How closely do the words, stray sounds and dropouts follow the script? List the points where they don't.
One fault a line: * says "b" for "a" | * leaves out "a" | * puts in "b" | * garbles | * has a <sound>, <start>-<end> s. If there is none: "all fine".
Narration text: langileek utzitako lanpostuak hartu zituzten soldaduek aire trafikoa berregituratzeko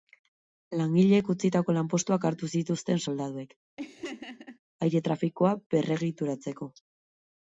* has a laugh, 3.8-4.6 s